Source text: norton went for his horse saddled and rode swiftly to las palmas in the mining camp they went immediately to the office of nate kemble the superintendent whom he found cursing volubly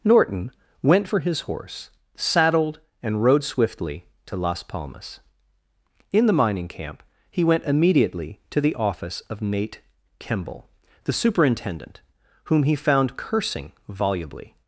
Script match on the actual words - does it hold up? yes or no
no